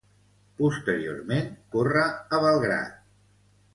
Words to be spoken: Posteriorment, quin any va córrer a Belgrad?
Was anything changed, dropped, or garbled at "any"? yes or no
yes